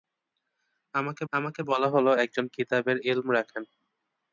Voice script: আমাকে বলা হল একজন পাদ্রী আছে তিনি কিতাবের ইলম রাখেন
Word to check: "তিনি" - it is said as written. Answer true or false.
false